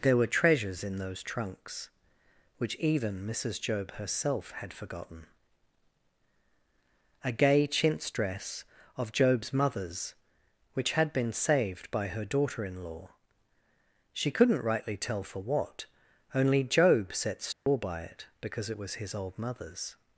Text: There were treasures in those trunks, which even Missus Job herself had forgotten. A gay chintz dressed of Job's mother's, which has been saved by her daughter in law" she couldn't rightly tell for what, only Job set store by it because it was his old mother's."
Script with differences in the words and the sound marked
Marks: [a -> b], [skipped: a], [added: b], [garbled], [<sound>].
There were treasures in those trunks, which even Missus Job herself had forgotten. A gay chintz [dressed -> dress] of Job's mother's, which [has -> had] been saved by her daughter in law" she couldn't rightly tell for what, only Job set store [dropout] by it because it was his old mother's."